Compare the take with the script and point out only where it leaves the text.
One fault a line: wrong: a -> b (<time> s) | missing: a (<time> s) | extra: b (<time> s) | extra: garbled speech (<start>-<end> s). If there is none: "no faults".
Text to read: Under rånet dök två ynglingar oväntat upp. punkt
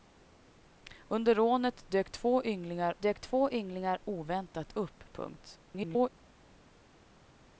extra: dök två ynglingar (3.0 s)
extra: garbled speech (5.7-6.1 s)